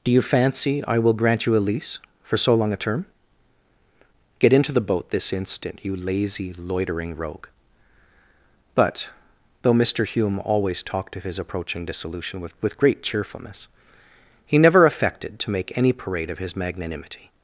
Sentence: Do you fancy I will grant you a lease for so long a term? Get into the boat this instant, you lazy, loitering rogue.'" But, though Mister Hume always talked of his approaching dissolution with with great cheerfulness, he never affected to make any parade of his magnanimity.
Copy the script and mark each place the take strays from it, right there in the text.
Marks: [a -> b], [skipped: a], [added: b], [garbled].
Do you fancy I will grant you a lease for so long a term? Get into the boat this instant, you lazy, loitering rogue.'" But, though Mister Hume always talked of his approaching dissolution with with great cheerfulness, he never affected to make any parade of his magnanimity.